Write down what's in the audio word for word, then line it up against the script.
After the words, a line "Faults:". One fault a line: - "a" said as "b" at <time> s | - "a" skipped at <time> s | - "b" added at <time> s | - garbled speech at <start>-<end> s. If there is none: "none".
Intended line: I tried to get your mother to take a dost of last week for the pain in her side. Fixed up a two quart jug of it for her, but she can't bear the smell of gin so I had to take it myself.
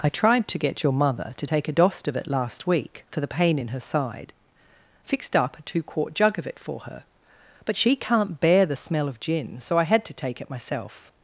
I tried to get your mother to take a dost of it last week for the pain in her side. Fixed up a two quart jug of it for her, but she can't bear the smell of gin so I had to take it myself.
Faults:
- "it" added at 2.1 s